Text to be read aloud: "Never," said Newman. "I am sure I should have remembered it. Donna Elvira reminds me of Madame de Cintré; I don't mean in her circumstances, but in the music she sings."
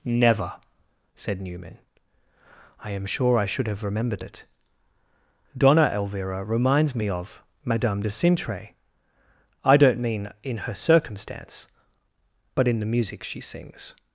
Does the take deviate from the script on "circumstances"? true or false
true